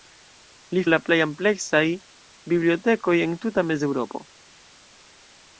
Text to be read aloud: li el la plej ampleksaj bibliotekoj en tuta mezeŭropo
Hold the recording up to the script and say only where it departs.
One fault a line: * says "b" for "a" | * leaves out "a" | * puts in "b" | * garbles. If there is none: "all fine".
all fine